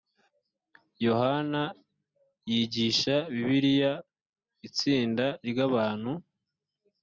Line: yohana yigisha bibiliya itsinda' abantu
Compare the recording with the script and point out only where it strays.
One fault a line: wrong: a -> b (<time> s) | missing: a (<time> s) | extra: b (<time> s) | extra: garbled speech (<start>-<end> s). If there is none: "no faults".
extra: ry (5.5 s)